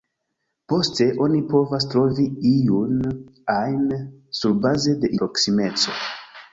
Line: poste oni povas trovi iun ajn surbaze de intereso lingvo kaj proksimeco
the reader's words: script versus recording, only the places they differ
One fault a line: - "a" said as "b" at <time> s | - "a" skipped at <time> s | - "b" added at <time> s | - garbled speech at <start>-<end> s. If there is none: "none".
- "intereso lingvo kaj" skipped at 5.2 s